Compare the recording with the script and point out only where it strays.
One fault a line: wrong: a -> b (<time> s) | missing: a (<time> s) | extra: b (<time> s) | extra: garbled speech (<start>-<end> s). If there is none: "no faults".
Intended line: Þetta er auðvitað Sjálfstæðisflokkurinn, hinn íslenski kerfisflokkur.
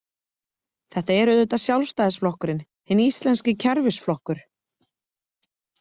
no faults